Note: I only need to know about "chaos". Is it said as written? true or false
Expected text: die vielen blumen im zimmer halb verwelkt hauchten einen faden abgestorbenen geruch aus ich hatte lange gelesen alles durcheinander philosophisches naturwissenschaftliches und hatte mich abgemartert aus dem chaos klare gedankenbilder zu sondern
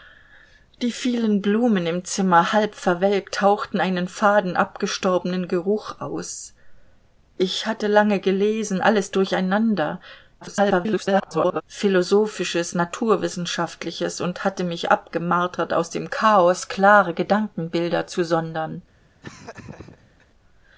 true